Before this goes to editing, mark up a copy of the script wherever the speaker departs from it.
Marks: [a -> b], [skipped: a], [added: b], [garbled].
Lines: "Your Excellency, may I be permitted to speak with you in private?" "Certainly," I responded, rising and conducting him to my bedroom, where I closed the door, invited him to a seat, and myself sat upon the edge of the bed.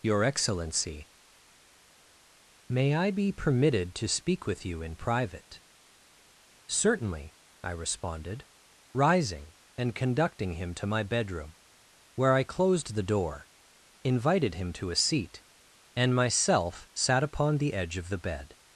"Your Excellency, may I be permitted to speak with you in private?" "Certainly," I responded, rising and conducting him to my bedroom, where I closed the door, invited him to a seat, and myself sat upon the edge of the bed.